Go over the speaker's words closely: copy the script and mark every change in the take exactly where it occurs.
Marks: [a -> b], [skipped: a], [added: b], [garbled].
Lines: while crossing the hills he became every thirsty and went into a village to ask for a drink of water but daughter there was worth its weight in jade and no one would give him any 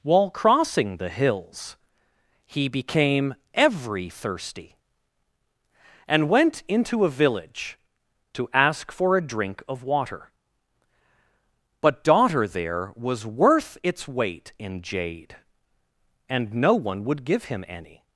while crossing the hills he became every thirsty and went into a village to ask for a drink of water but daughter there was worth its weight in jade and no one would give him any